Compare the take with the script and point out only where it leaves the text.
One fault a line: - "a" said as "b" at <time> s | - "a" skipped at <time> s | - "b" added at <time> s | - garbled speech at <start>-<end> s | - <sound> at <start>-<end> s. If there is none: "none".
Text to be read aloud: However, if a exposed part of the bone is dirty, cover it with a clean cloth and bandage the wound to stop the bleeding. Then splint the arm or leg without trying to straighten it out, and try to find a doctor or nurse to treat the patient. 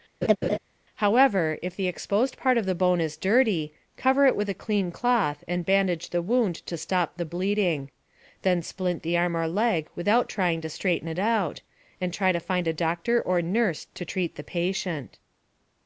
- laugh at 0.2-0.6 s
- "a" said as "the" at 1.7 s